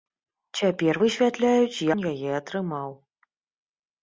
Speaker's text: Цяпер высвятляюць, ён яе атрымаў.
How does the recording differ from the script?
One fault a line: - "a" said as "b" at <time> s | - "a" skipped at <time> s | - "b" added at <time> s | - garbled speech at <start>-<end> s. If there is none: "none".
none